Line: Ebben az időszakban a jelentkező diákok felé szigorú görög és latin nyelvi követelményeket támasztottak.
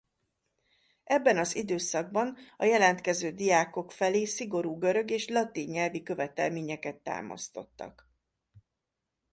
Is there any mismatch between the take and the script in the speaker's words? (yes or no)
no